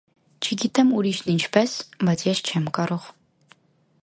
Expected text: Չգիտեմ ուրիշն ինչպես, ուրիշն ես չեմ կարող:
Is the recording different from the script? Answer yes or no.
yes